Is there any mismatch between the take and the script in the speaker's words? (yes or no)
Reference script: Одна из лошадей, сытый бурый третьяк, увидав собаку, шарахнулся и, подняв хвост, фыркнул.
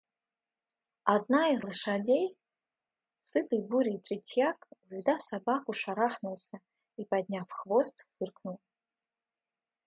no